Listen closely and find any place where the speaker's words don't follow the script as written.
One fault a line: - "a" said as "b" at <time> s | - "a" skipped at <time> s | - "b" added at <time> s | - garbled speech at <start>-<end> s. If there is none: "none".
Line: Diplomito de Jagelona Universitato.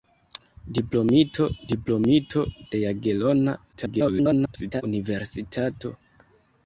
- "diplomito" added at 1.7 s
- garbled speech at 3.7-4.8 s